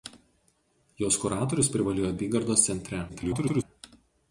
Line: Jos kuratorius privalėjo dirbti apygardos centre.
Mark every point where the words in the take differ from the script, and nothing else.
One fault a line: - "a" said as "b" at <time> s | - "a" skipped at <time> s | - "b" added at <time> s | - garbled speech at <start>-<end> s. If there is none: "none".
- "dirbti" skipped at 2.1 s
- garbled speech at 3.1-3.6 s